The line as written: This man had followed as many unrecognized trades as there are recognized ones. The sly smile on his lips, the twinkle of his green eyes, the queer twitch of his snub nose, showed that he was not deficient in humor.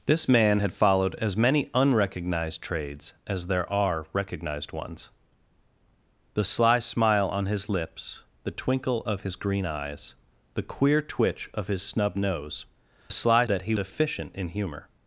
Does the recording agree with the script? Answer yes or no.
no